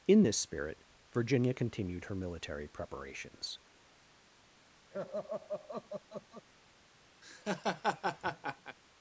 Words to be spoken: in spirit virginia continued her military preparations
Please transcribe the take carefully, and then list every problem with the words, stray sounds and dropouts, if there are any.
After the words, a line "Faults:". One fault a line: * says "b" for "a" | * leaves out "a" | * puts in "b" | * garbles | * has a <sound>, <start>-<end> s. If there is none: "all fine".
in this spirit virginia continued her military preparations
Faults:
* puts in "this"
* has a laugh, 4.9-6.5 s
* has a laugh, 7.2-8.8 s